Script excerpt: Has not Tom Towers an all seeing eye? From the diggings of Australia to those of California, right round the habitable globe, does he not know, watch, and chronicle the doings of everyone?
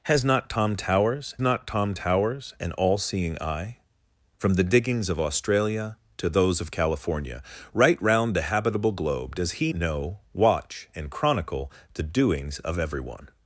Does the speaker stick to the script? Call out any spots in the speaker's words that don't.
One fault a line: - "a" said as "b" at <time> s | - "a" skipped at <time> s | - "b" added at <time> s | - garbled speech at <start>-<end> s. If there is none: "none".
- "not Tom Towers" added at 1.4 s
- "not" skipped at 9.7 s